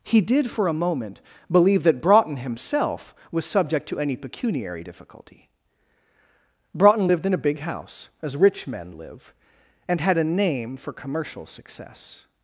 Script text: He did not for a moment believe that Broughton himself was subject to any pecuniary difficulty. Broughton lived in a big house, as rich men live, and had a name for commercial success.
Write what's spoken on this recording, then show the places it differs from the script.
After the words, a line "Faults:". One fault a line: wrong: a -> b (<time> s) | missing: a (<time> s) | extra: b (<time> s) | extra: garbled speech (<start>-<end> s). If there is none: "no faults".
He did for a moment believe that Broughton himself was subject to any pecuniary difficulty. Broughton lived in a big house, as rich men live, and had a name for commercial success.
Faults:
missing: not (0.5 s)